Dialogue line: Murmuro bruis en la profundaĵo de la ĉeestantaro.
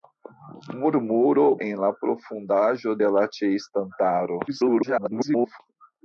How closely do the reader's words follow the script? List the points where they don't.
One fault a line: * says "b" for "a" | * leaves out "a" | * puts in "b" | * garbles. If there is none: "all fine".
* leaves out "bruis"
* garbles